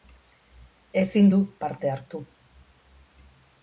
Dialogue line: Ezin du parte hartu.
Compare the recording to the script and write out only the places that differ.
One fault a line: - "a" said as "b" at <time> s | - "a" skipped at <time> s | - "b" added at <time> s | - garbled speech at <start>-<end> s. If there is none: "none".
none